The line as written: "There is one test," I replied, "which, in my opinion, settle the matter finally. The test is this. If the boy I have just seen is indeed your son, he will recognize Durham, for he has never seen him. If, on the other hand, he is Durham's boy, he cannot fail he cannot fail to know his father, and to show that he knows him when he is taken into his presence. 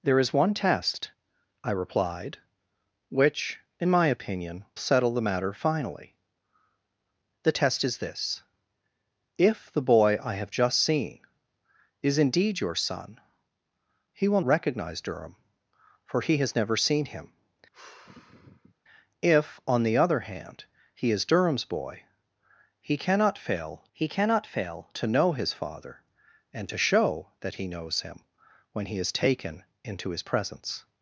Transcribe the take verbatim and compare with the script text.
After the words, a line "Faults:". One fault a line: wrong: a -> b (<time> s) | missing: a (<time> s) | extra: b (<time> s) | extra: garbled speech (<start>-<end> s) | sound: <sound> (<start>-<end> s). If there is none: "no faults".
"There is one test," I replied, "which, in my opinion, settle the matter finally. The test is this. If the boy I have just seen is indeed your son, he will recognize Durham, for he has never seen him. If, on the other hand, he is Durham's boy, he cannot fail he cannot fail to know his father, and to show that he knows him when he is taken into his presence.
Faults:
sound: sigh (17.7-18.7 s)